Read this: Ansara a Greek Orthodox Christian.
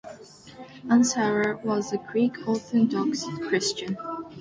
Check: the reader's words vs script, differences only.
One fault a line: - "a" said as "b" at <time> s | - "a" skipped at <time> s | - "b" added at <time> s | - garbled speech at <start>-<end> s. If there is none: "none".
- "was" added at 1.6 s